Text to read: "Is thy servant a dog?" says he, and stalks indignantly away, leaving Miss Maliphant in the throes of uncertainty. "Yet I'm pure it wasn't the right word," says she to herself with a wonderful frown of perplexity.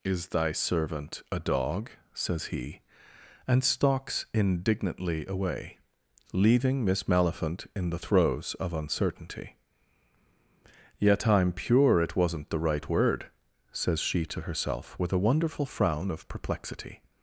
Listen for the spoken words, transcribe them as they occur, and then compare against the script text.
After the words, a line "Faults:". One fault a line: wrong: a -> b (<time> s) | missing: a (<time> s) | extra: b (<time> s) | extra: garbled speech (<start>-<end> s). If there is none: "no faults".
"Is thy servant a dog?" says he, and stalks indignantly away, leaving Miss Maliphant in the throes of uncertainty. "Yet I'm pure it wasn't the right word," says she to herself with a wonderful frown of perplexity.
Faults:
no faults